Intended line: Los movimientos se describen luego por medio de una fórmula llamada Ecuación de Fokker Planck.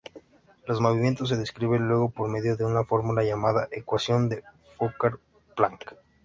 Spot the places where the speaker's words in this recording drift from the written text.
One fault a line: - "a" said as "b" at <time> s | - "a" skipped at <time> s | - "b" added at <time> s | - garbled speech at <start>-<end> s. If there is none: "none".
none